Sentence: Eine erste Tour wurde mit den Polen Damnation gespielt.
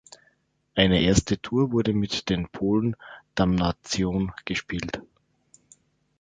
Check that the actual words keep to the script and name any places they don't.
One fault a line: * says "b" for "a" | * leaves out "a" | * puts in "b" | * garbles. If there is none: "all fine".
all fine